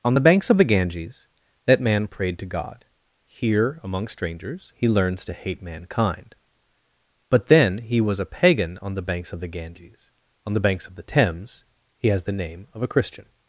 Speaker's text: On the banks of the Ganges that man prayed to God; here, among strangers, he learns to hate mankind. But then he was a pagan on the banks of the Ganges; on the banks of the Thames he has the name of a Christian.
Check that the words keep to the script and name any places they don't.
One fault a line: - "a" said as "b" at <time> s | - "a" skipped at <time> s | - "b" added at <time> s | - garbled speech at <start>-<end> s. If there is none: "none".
none